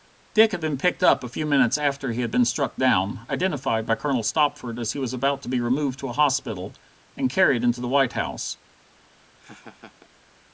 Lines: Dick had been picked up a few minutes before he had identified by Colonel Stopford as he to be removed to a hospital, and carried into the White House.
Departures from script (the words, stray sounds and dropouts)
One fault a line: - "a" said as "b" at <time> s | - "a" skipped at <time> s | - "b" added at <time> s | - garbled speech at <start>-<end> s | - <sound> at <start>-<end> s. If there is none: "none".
- "before" said as "after" at 1.8 s
- "been struck down" added at 2.3 s
- "was about" added at 5.0 s
- laugh at 9.0-10.1 s